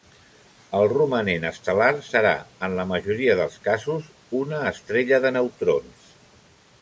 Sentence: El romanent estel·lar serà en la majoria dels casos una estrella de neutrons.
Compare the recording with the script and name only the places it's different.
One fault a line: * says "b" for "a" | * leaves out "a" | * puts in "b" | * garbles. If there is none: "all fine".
all fine